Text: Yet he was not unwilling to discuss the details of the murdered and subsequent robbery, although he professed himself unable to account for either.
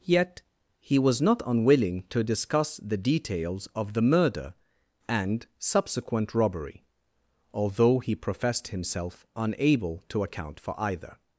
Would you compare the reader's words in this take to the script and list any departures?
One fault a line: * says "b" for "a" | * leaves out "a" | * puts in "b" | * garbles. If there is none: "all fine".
* says "murder" for "murdered"